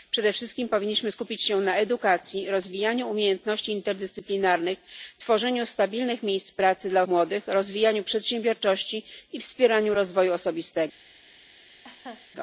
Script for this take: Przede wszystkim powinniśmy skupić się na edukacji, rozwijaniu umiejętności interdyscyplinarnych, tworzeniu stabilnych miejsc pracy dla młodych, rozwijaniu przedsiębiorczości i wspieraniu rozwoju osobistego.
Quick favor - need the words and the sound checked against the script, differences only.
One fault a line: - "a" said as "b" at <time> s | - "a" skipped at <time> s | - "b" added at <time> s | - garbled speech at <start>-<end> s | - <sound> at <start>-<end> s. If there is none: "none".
- laugh at 11.8-12.3 s